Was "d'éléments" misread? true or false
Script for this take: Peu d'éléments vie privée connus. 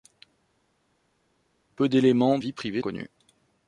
false